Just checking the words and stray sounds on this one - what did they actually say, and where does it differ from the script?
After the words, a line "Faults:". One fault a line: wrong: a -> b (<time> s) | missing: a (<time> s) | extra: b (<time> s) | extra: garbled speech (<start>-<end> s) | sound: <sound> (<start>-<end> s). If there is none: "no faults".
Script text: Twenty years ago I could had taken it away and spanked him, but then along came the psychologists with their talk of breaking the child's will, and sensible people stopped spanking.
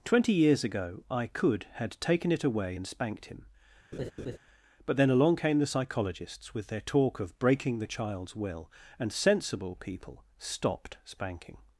Twenty years ago I could had taken it away and spanked him, but then along came the psychologists with their talk of breaking the child's will, and sensible people stopped spanking.
Faults:
sound: laugh (3.9-4.4 s)